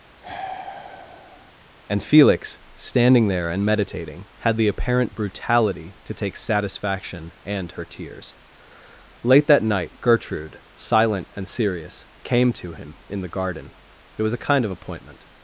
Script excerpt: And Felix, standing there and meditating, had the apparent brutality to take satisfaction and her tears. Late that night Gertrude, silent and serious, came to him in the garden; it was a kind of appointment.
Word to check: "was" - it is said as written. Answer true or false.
true